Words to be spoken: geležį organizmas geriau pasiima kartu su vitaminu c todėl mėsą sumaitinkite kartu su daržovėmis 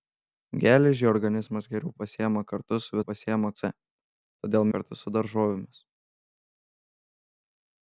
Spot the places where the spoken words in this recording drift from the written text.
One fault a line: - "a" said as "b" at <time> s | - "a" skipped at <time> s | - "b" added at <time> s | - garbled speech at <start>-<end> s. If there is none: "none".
- "vitaminu" said as "pasiima" at 3.1 s
- "mėsą sumaitinkite" skipped at 4.7 s